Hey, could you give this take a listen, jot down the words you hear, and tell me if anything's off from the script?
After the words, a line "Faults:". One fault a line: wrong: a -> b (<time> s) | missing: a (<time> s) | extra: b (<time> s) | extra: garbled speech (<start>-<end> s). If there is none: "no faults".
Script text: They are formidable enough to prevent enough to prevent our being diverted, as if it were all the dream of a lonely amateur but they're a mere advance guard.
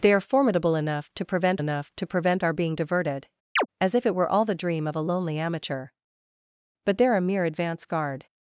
They are formidable enough to prevent enough to prevent our being diverted, as if it were all the dream of a lonely amateur but they're a mere advance guard.
Faults:
no faults